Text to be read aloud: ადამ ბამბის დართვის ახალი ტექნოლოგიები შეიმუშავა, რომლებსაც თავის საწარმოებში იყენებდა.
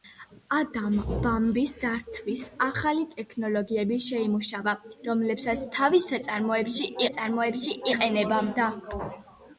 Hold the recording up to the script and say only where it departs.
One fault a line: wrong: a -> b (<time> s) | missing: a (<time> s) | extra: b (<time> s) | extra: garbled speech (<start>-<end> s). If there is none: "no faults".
extra: საწარმოებში (7.0 s)